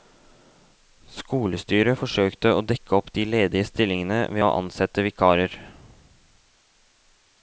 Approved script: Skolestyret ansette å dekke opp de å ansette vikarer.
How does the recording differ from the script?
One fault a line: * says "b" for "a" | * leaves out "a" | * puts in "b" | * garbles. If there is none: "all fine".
* says "forsøkte" for "ansette"
* puts in "ledige stillingene ved"